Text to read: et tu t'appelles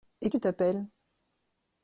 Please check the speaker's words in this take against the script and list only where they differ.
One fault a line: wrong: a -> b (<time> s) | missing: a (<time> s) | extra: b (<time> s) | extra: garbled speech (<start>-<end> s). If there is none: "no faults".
no faults